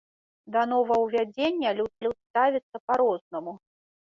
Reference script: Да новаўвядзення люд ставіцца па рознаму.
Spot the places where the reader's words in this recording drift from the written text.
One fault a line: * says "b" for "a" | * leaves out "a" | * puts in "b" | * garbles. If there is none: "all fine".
* puts in "люд"